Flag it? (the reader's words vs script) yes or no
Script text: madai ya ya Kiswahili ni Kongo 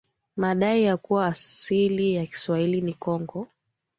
yes